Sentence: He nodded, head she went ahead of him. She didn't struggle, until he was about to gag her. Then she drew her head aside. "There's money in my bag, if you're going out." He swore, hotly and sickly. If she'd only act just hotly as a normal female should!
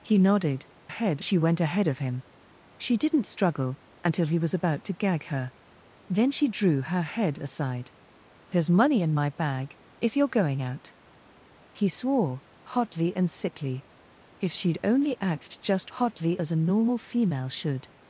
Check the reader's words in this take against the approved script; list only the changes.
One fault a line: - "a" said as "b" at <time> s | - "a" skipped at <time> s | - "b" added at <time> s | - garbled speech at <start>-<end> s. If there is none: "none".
none